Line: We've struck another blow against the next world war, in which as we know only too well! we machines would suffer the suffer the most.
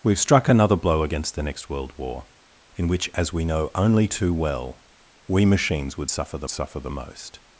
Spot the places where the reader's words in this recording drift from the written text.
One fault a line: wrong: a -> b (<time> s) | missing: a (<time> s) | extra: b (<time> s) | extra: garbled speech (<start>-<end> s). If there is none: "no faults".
no faults